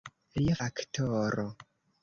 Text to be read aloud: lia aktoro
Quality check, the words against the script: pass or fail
pass